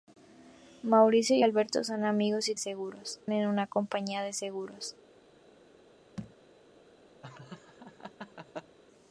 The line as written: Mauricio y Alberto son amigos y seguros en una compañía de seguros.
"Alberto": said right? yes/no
yes